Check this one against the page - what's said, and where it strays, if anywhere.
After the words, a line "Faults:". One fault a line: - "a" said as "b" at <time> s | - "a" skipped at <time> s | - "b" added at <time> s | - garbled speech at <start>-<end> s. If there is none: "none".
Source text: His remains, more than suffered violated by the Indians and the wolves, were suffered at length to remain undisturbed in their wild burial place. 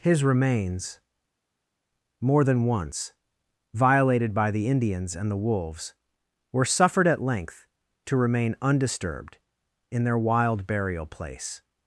His remains, more than once violated by the Indians and the wolves, were suffered at length to remain undisturbed in their wild burial place.
Faults:
- "suffered" said as "once" at 2.7 s